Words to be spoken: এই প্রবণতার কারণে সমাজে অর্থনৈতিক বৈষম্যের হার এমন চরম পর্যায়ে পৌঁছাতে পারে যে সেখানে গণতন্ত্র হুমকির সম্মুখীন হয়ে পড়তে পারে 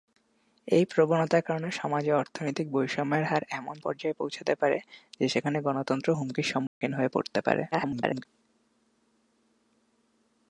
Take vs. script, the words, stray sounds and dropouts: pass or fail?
fail